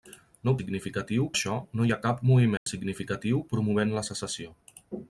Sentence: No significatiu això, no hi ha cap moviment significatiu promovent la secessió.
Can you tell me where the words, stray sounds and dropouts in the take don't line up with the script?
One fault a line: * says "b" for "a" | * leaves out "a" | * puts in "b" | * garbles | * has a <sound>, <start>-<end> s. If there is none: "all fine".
* has a dropout, 2.6-2.7 s